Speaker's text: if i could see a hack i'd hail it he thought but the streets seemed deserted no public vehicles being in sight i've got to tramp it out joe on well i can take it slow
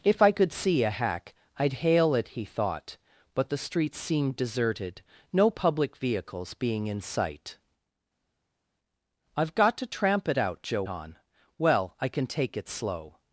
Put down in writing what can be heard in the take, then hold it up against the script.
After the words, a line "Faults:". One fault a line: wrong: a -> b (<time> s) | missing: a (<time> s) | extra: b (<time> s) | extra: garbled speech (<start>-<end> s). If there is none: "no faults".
if i could see a hack i'd hail it he thought but the streets seemed deserted no public vehicles being in sight i've got to tramp it out joe on well i can take it slow
Faults:
no faults